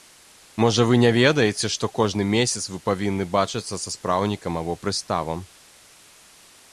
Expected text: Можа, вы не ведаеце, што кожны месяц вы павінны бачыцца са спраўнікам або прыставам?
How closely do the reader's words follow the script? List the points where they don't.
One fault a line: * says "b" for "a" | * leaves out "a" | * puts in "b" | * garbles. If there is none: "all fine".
all fine